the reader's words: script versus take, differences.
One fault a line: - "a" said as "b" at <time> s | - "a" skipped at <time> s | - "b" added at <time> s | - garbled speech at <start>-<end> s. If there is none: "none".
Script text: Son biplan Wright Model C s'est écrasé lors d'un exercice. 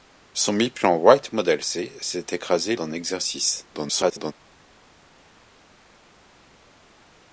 - "lors" skipped at 2.8 s
- garbled speech at 3.7-4.3 s